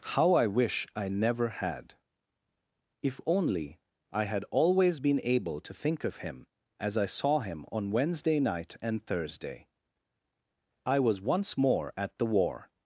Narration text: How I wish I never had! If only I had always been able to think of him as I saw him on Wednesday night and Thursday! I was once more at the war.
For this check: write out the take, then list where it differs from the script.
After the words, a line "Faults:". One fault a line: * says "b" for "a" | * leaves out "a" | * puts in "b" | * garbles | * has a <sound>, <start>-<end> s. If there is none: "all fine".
How I wish I never had! If only I had always been able to think of him as I saw him on Wednesday night and Thursday! I was once more at the war.
Faults:
all fine